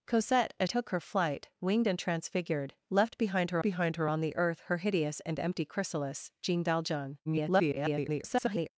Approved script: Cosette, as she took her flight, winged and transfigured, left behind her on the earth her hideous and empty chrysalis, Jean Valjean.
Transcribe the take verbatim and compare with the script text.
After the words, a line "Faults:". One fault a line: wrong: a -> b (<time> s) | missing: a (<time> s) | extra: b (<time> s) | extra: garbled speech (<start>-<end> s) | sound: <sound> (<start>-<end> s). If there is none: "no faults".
Cosette, as took her flight, winged and transfigured, left behind her behind her on the earth her hideous and empty chrysalis, Jean Valjean. [garbled]
Faults:
missing: she (0.7 s)
extra: behind her (3.6 s)
extra: garbled speech (7.2-8.7 s)